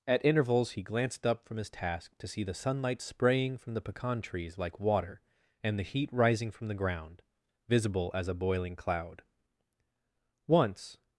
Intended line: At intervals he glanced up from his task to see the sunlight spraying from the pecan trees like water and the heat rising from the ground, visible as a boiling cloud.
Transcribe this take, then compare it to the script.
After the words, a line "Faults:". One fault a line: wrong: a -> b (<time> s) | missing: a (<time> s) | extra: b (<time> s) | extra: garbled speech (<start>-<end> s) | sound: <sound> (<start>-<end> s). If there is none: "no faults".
At intervals he glanced up from his task to see the sunlight spraying from the pecan trees like water and the heat rising from the ground, visible as a boiling cloud. Once
Faults:
extra: Once (10.5 s)